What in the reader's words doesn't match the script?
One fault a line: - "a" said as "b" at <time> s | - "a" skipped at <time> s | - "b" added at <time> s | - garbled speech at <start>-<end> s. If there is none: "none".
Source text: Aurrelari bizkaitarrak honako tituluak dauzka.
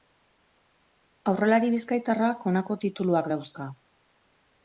none